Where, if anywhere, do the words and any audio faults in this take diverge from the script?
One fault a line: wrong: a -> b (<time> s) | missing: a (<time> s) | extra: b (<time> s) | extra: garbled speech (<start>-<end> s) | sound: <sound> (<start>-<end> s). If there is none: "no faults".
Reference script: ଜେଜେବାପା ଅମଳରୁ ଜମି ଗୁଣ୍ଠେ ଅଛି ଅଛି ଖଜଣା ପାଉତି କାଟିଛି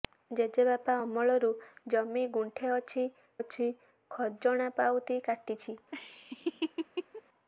sound: laugh (5.9-7.2 s)